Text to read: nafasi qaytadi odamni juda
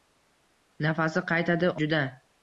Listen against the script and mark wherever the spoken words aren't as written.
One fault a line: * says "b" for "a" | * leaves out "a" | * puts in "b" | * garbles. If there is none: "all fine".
* leaves out "odamni"